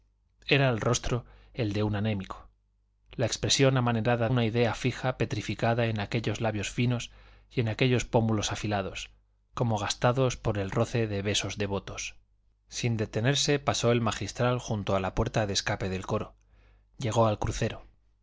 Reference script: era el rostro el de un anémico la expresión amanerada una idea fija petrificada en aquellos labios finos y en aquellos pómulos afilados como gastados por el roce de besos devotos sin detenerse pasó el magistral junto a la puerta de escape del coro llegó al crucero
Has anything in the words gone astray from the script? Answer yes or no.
no